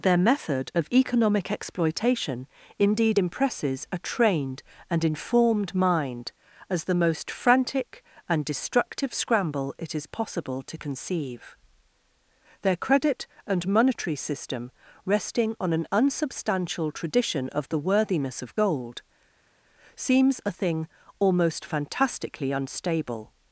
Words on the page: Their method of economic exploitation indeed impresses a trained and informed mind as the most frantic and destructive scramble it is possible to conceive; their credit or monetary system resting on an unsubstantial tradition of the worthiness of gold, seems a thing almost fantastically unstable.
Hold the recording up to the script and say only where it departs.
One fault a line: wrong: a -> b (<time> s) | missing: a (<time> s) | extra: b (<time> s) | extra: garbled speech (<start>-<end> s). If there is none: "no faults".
wrong: or -> and (13.4 s)